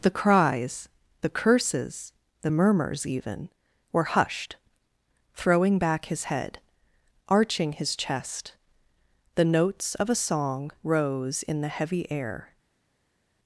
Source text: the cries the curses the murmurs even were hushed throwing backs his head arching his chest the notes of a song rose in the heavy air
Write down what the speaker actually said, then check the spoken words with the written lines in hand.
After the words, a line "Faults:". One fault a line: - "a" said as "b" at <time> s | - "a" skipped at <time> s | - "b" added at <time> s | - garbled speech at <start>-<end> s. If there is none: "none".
the cries the curses the murmurs even were hushed throwing back his head arching his chest the notes of a song rose in the heavy air
Faults:
- "backs" said as "back" at 5.8 s